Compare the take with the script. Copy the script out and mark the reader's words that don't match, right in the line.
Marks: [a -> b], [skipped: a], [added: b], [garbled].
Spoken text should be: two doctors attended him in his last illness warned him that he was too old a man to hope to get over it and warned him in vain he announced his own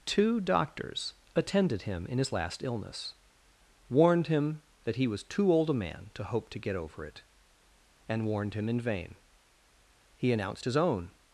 two doctors attended him in his last illness warned him that he was too old a man to hope to get over it and warned him in vain he announced his own